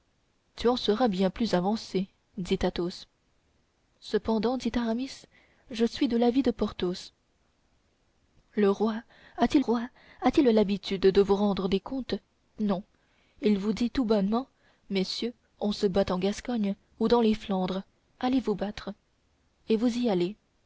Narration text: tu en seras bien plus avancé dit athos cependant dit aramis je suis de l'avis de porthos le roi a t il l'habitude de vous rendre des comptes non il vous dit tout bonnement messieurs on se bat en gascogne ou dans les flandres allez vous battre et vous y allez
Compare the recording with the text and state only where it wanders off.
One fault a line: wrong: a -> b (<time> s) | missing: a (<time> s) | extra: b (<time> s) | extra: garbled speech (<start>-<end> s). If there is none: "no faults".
extra: roi a t (9.6 s)